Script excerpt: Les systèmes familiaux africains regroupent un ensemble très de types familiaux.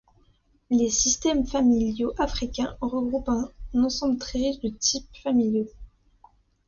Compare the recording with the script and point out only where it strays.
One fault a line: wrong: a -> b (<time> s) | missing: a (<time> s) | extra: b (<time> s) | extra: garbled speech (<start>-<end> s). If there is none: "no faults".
extra: riche (4.4 s)